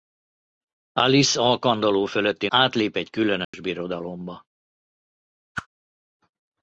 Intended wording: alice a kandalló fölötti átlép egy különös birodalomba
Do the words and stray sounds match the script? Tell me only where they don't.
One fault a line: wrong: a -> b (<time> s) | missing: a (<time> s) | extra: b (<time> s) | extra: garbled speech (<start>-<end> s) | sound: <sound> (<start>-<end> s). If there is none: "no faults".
sound: dropout (3.4-3.5 s)
sound: whoosh (5.5-5.7 s)